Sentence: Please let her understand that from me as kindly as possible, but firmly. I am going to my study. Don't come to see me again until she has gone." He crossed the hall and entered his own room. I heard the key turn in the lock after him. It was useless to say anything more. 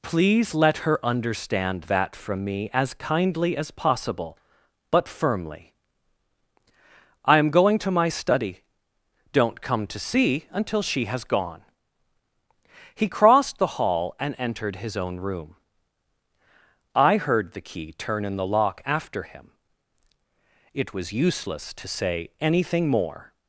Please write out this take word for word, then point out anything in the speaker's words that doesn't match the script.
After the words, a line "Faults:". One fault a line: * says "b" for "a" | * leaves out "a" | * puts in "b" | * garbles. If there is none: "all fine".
Please let her understand that from me as kindly as possible, but firmly. I am going to my study. Don't come to see until she has gone." He crossed the hall and entered his own room. I heard the key turn in the lock after him. It was useless to say anything more.
Faults:
* leaves out "me again"